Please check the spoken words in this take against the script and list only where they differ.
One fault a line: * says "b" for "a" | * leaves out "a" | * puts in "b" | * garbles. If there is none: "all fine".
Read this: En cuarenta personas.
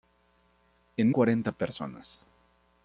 all fine